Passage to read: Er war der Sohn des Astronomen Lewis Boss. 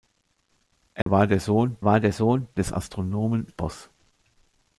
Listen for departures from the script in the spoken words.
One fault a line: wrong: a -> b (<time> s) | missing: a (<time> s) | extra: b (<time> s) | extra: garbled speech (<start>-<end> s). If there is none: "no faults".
extra: war der Sohn (1.8 s)
missing: Lewis (3.5 s)